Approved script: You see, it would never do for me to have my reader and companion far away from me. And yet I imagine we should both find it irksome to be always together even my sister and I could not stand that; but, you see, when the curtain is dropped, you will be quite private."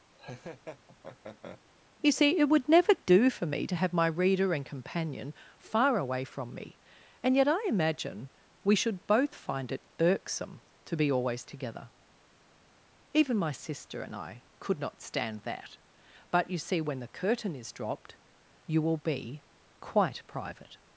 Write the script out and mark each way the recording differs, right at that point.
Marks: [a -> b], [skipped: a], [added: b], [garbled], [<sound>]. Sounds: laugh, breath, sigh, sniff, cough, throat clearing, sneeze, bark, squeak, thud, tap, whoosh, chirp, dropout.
[laugh] You see, it would never do for me to have my reader and companion far away from me. And yet I imagine we should both find it irksome to be always together even my sister and I could not stand that; but, you see, when the curtain is dropped, you will be quite private."